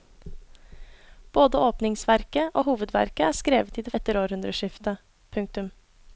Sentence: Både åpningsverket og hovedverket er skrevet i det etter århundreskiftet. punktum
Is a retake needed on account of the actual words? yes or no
no